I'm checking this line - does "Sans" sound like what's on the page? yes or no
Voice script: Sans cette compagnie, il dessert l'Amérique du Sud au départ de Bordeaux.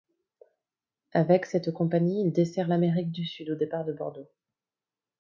no